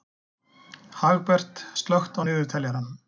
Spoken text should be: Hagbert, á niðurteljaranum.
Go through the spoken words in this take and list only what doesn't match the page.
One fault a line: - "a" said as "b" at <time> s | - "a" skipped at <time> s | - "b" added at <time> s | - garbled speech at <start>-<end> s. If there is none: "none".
- "slökktu" added at 1.8 s